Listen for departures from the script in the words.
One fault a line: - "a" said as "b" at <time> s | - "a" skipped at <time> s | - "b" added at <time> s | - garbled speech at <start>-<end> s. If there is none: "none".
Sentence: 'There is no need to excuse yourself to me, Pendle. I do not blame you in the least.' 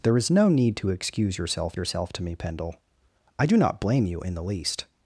- "yourself" added at 1.8 s